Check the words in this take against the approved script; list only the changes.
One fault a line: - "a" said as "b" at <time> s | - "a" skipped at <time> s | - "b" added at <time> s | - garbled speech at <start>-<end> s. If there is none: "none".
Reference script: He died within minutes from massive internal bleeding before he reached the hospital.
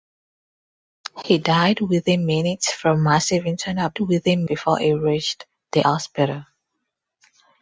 - "bleeding" said as "within" at 4.0 s